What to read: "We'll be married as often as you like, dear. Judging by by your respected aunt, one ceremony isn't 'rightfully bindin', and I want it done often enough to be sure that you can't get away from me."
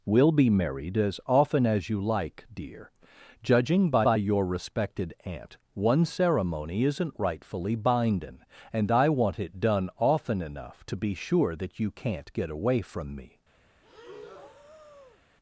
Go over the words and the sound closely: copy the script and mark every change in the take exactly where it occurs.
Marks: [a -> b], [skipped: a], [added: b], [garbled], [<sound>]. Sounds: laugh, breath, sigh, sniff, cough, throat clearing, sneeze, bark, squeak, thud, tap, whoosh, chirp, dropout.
"We'll be married as often as you like, dear. Judging by by your respected aunt, one ceremony isn't 'rightfully bindin', and I want it done often enough to be sure that you can't get away from me." [breath]